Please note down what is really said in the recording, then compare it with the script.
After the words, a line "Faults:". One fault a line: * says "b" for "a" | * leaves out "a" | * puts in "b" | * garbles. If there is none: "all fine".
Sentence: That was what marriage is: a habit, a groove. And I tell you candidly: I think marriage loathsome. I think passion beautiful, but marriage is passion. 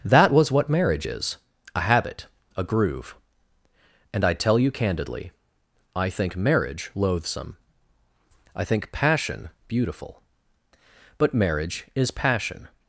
That was what marriage is: a habit, a groove. And I tell you candidly: I think marriage loathsome. I think passion beautiful, but marriage is passion.
Faults:
all fine